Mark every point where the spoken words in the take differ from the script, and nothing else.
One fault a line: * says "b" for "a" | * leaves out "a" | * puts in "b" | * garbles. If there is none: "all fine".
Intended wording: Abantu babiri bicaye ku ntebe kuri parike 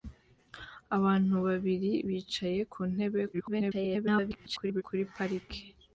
* garbles